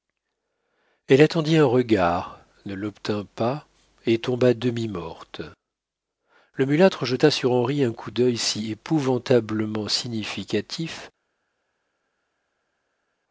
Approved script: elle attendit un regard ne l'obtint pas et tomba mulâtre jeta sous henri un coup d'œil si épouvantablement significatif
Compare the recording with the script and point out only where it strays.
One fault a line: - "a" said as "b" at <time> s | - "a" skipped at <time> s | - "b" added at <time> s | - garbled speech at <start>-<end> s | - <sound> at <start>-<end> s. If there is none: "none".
- "demi morte le" added at 4.5 s
- "sous" said as "sur" at 7.3 s